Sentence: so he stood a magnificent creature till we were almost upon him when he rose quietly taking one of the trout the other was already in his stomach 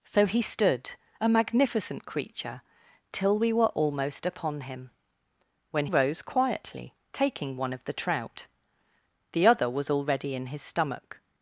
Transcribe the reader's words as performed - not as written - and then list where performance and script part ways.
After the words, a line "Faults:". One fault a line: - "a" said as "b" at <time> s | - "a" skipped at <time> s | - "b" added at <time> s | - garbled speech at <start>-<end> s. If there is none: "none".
so he stood a magnificent creature till we were almost upon him when rose quietly taking one of the trout the other was already in his stomach
Faults:
- "he" skipped at 5.9 s